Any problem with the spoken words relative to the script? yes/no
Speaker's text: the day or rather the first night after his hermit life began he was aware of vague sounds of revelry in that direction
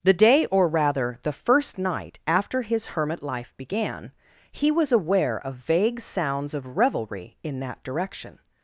no